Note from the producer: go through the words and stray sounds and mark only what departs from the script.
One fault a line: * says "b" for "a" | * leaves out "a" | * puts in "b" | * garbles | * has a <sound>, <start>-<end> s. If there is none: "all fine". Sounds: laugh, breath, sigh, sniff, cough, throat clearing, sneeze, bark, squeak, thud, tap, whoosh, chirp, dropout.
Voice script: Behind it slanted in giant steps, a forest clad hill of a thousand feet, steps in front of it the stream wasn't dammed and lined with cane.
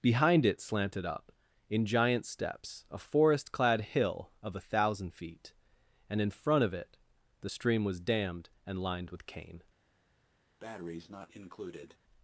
* puts in "up"
* says "and" for "steps"
* says "was" for "wasn't"
* has a breath, 10.6-12.0 s